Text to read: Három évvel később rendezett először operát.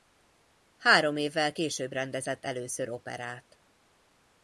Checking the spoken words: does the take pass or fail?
pass